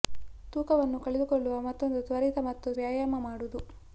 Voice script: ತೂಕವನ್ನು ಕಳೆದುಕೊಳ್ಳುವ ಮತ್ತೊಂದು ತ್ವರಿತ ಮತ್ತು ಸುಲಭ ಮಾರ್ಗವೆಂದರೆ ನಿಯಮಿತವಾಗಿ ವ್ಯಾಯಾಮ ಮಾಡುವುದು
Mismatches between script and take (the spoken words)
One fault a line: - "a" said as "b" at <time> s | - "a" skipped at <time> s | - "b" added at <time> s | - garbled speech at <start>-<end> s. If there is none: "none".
- "ಸುಲಭ ಮಾರ್ಗವೆಂದರೆ ನಿಯಮಿತವಾಗಿ" skipped at 2.7 s